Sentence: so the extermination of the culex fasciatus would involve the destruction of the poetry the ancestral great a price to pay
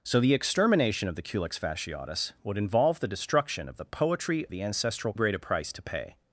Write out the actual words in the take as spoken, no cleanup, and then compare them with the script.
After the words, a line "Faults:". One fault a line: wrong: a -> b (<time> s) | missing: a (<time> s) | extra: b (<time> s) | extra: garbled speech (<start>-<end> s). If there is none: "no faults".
so the extermination of the culex fasciatus would involve the destruction of the poetry the ancestral great a price to pay
Faults:
no faults